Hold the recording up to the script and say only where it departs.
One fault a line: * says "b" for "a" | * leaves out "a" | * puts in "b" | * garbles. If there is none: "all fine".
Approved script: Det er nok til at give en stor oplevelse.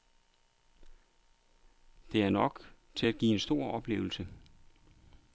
all fine